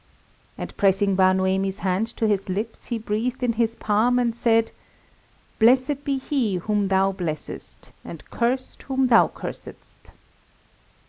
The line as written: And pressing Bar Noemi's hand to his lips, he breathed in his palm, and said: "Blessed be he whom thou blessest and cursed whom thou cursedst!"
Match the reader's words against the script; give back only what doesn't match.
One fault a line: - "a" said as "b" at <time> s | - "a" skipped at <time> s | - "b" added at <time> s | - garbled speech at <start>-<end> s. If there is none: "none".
none